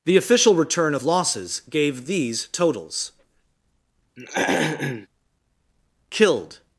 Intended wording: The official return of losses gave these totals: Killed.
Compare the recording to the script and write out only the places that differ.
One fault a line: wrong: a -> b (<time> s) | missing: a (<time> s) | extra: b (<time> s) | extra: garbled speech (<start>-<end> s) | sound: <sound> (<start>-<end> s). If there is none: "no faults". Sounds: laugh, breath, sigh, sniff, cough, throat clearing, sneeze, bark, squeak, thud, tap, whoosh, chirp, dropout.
sound: throat clearing (4.2-5.1 s)